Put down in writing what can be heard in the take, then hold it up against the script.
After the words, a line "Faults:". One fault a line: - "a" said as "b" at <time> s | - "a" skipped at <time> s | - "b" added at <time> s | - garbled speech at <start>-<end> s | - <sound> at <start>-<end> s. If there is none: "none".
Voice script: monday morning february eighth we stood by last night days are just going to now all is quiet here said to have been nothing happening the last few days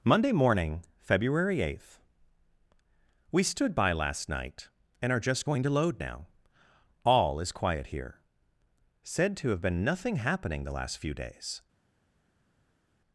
monday morning february eighth we stood by last night and are just going to load now all is quiet here said to have been nothing happening the last few days
Faults:
- "days" said as "and" at 5.0 s
- "load" added at 5.7 s